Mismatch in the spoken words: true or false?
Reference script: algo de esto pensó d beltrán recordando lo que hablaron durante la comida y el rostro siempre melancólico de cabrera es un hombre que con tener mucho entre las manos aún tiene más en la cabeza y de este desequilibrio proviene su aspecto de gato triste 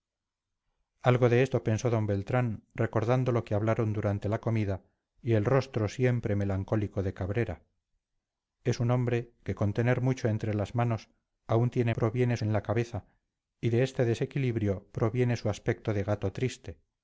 true